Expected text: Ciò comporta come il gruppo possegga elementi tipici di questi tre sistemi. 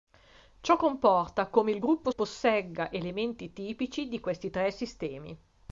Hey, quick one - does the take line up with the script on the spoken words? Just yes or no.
yes